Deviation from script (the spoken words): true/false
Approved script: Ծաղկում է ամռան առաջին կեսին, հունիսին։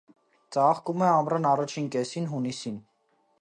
false